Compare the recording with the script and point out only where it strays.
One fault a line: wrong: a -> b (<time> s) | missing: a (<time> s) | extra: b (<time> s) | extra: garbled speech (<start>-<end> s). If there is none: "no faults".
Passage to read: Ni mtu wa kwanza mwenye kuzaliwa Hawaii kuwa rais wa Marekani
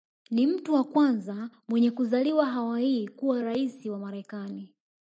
no faults